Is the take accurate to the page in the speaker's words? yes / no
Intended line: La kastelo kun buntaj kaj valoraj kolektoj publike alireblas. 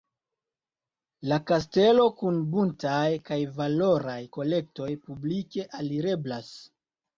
yes